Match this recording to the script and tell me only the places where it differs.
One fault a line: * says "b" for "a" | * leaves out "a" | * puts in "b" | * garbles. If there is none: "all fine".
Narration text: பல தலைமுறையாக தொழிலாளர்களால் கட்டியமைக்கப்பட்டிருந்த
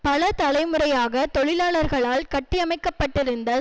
all fine